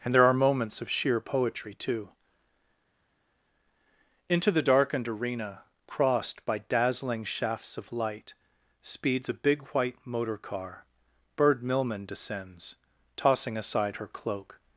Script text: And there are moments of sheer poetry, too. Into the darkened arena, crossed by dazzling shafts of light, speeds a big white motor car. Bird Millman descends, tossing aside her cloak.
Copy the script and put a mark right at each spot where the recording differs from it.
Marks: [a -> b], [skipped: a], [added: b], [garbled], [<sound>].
And there are moments of sheer poetry, too. Into the darkened arena, crossed by dazzling shafts of light, speeds a big white motor car. Bird Millman descends, tossing aside her cloak.